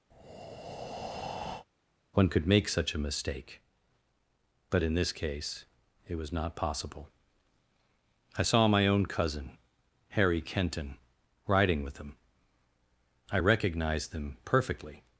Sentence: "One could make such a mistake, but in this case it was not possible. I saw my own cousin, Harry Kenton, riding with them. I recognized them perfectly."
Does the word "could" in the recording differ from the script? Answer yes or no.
no